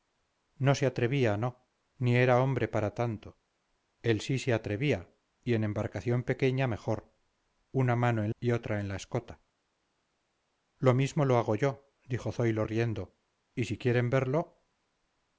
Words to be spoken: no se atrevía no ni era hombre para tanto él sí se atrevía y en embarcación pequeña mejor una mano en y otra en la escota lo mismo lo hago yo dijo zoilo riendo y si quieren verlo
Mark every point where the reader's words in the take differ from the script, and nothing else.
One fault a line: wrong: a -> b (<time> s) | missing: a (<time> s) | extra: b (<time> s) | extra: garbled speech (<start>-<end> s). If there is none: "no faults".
no faults